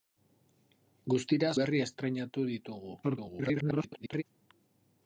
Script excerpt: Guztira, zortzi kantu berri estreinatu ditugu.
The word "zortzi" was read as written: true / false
false